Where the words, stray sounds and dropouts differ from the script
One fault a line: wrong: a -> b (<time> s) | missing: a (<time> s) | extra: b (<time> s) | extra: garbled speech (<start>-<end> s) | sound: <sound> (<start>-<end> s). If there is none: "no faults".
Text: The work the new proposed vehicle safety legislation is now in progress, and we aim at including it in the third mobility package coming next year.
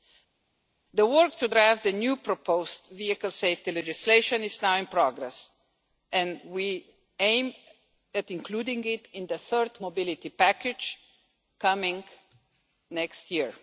extra: to draft (1.4 s)